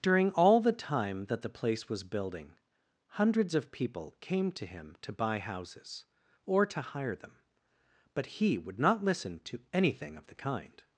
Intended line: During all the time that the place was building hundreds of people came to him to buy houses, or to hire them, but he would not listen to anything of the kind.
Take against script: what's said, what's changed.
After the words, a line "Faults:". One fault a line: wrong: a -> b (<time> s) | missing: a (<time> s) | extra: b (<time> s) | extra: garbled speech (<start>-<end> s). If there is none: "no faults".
During all the time that the place was building hundreds of people came to him to buy houses, or to hire them, but he would not listen to anything of the kind.
Faults:
no faults